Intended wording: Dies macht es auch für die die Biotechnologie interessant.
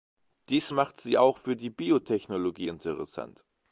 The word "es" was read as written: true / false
false